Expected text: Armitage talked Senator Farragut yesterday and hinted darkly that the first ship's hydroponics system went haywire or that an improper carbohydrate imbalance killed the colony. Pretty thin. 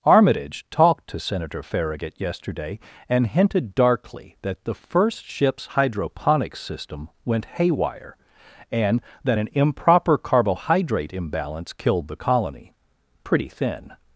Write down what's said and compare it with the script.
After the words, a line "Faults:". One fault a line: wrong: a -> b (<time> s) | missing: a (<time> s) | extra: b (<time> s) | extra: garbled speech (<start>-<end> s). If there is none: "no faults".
Armitage talked to Senator Farragut yesterday and hinted darkly that the first ship's hydroponics system went haywire and that an improper carbohydrate imbalance killed the colony. Pretty thin.
Faults:
extra: to (1.1 s)
wrong: or -> and (8.7 s)